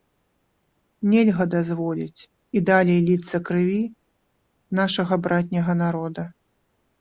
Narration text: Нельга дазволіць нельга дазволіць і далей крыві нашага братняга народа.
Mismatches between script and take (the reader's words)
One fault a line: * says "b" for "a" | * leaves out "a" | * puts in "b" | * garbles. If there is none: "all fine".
* leaves out "нельга дазволіць"
* puts in "ліцца"